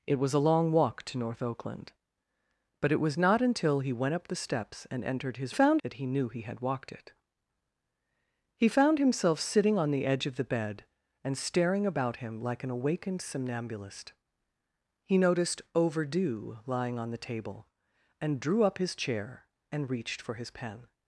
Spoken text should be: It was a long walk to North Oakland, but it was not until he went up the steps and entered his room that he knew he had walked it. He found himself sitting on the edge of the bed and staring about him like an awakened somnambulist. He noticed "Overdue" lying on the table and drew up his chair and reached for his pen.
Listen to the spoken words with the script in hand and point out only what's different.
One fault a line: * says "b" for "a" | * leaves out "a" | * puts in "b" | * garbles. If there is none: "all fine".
* says "found" for "room"